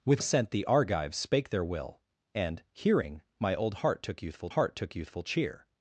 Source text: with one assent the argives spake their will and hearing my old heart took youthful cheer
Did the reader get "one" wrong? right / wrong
wrong